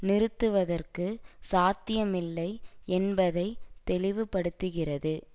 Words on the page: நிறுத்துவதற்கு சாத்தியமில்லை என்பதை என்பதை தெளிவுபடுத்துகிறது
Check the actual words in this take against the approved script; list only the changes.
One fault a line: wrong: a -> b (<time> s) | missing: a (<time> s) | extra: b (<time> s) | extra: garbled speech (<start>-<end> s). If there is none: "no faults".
missing: என்பதை (3.5 s)